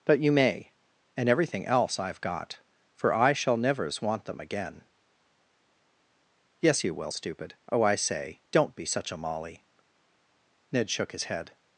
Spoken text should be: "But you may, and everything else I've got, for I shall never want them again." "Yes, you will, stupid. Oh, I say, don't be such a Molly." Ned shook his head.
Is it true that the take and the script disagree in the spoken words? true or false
true